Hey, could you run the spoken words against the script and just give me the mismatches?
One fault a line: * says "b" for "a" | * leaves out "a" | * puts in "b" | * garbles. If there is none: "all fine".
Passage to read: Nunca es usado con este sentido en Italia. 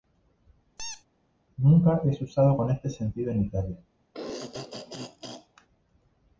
all fine